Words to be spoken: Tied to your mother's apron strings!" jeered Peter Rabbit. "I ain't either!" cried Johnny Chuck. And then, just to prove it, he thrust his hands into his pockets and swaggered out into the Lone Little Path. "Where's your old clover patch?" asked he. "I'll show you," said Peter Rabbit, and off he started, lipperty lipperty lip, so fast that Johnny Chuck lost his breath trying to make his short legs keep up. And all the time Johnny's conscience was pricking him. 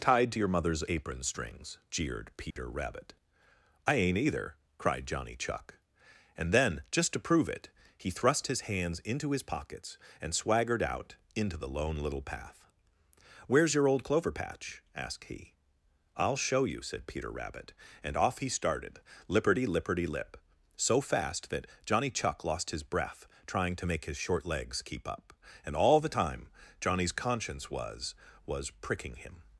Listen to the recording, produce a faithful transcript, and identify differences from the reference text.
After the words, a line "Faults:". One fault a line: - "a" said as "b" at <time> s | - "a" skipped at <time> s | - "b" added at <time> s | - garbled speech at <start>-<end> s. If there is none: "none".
Tied to your mother's apron strings!" jeered Peter Rabbit. "I ain't either!" cried Johnny Chuck. And then, just to prove it, he thrust his hands into his pockets and swaggered out into the Lone Little Path. "Where's your old clover patch?" asked he. "I'll show you," said Peter Rabbit, and off he started, lipperty lipperty lip, so fast that Johnny Chuck lost his breath trying to make his short legs keep up. And all the time Johnny's conscience was was pricking him.
Faults:
- "was" added at 28.5 s